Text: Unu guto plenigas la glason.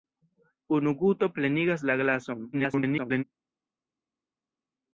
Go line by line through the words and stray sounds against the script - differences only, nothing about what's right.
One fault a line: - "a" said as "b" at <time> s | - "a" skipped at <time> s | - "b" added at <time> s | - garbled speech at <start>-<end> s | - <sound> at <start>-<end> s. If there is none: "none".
- garbled speech at 2.5-3.2 s